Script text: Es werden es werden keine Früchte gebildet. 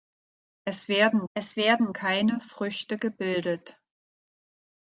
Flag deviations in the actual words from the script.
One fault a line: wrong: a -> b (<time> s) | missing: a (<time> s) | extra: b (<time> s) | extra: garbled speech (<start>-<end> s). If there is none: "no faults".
no faults